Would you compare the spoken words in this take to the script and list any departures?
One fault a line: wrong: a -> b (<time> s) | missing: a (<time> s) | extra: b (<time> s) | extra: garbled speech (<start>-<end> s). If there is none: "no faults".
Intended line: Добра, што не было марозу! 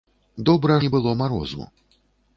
missing: што (0.8 s)